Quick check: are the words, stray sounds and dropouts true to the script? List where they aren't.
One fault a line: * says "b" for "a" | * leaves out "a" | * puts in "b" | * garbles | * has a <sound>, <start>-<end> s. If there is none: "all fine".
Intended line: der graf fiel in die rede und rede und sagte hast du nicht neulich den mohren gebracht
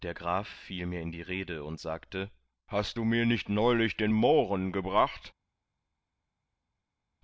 * puts in "mir"
* leaves out "rede und"
* puts in "mir"